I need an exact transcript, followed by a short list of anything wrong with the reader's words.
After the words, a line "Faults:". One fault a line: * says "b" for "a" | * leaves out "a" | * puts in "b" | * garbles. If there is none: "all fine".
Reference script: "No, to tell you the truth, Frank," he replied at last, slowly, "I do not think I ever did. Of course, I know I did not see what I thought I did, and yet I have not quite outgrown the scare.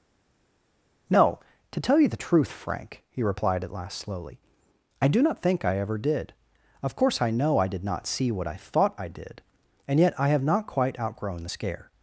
"No, to tell you the truth, Frank," he replied at last, slowly, "I do not think I ever did. Of course, I know I did not see what I thought I did, and yet I have not quite outgrown the scare.
Faults:
all fine